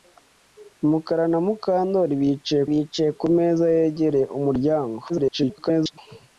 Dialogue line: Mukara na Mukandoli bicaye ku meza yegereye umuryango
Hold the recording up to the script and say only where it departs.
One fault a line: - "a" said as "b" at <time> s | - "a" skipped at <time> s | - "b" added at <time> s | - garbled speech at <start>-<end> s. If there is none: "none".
- "bicaye" added at 2.7 s
- garbled speech at 5.1-6.0 s